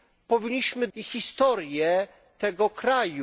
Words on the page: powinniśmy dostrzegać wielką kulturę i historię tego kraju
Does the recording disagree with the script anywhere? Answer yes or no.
yes